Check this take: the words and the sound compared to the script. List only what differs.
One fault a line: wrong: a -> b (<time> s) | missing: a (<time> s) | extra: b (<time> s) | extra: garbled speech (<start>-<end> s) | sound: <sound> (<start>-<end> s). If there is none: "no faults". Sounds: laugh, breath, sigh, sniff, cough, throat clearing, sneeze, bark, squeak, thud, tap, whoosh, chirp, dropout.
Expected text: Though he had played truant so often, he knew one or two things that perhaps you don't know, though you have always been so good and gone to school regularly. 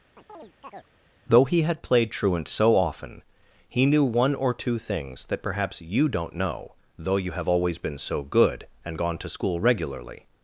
sound: chirp (0.2-0.9 s)